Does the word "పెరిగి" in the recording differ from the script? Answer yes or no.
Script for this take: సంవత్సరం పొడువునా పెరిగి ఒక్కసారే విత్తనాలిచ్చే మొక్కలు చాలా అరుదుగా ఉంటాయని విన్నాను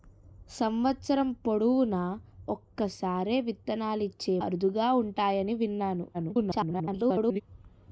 yes